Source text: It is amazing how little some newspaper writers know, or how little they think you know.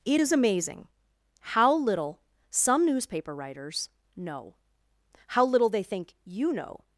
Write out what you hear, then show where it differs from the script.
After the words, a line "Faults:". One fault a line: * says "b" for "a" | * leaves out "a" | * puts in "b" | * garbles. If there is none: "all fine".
It is amazing how little some newspaper writers know, how little they think you know.
Faults:
* leaves out "or"